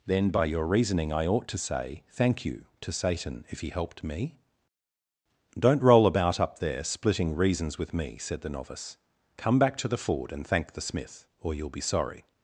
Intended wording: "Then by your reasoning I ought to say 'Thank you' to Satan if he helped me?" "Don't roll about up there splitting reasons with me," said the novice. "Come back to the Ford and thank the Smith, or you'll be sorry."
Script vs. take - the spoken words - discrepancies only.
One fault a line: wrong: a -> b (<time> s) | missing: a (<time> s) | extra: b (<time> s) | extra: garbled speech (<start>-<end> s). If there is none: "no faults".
no faults